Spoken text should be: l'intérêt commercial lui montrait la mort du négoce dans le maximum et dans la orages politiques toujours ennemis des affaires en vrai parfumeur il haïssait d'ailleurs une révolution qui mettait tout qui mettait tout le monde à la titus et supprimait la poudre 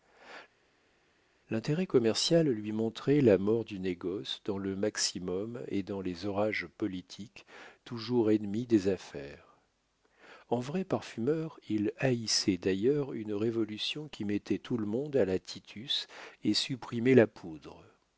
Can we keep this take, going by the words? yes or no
no